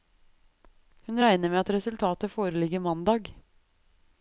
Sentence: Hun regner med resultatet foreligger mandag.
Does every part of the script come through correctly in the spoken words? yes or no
no